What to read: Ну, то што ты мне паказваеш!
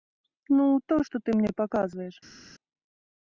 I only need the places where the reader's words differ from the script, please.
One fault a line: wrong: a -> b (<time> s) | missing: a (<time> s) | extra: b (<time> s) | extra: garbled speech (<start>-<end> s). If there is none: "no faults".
no faults